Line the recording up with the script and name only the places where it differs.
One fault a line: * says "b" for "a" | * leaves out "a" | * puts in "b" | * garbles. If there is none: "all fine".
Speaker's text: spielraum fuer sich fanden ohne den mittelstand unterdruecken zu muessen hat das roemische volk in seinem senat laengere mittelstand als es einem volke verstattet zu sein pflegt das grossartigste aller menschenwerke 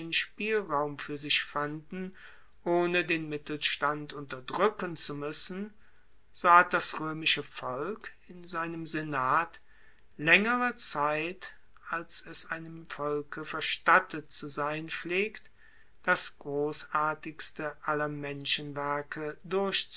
* puts in "so"
* says "zeit" for "mittelstand"